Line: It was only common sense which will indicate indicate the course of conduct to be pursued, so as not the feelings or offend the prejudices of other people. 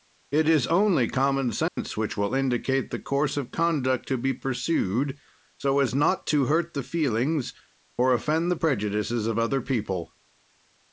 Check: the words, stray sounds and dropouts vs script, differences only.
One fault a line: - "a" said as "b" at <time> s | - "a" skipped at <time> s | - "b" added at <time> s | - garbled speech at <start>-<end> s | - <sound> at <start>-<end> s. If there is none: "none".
- "was" said as "is" at 0.5 s
- dropout at 1.7-1.8 s
- "indicate" skipped at 2.9 s
- "to hurt" added at 6.2 s